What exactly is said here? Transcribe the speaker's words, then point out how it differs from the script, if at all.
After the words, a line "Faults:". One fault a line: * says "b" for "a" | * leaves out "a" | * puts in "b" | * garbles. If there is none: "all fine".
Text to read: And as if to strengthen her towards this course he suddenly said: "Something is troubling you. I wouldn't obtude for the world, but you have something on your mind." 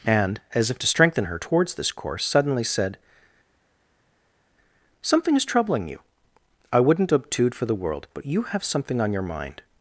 And as if to strengthen her towards this course suddenly said: "Something is troubling you. I wouldn't obtude for the world, but you have something on your mind."
Faults:
* leaves out "he"